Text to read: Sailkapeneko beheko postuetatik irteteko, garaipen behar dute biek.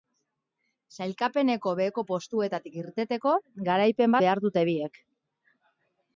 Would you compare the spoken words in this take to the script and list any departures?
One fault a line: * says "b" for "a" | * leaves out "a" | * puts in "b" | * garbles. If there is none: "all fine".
all fine